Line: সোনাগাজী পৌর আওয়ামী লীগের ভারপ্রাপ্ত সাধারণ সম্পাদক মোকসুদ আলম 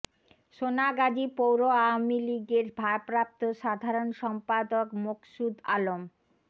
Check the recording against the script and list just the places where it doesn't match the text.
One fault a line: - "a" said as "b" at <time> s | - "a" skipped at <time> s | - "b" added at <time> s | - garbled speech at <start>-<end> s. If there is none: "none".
none